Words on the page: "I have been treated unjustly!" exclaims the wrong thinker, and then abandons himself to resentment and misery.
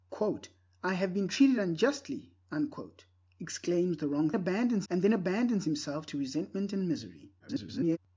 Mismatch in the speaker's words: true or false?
true